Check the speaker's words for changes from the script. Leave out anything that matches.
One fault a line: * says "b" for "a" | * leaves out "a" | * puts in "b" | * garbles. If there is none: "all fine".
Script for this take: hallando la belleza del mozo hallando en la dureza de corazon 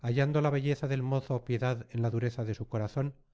* says "piedad" for "hallando"
* puts in "su"